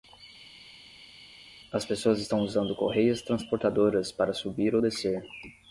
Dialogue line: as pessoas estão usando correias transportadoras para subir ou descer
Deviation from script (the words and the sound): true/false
false